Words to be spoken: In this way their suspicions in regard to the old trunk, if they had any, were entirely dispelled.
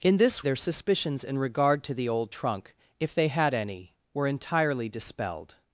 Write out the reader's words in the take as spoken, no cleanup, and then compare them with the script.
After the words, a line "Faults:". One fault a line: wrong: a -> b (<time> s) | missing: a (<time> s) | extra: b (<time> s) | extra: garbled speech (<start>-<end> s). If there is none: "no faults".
In this their suspicions in regard to the old trunk, if they had any, were entirely dispelled.
Faults:
missing: way (0.4 s)